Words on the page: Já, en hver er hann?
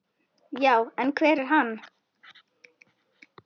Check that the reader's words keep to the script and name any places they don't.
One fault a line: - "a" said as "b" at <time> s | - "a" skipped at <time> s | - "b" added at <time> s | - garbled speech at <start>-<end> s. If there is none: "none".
none